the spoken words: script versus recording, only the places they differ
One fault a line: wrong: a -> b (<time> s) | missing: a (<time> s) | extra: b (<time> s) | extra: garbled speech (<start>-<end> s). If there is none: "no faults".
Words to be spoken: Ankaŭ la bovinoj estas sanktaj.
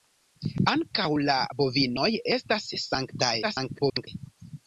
extra: garbled speech (3.4-4.1 s)